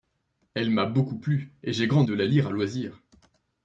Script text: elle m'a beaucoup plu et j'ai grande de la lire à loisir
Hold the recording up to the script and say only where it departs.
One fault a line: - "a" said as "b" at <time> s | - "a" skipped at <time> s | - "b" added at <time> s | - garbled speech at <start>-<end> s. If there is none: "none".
none